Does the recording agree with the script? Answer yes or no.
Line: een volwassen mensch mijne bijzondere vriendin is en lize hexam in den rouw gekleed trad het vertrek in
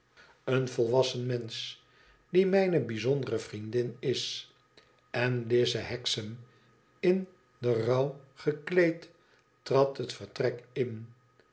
no